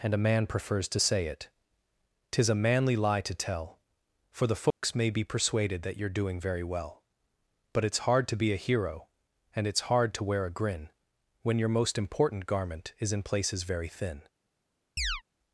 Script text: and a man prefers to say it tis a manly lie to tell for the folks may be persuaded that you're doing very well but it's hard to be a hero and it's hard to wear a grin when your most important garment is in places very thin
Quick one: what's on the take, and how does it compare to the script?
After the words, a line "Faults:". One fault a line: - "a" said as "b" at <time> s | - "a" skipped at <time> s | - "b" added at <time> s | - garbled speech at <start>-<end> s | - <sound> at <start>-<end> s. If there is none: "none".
and a man prefers to say it tis a manly lie to tell for the folks may be persuaded that you're doing very well but it's hard to be a hero and it's hard to wear a grin when your most important garment is in places very thin
Faults:
- dropout at 4.7-4.8 s
- chirp at 15.0-15.2 s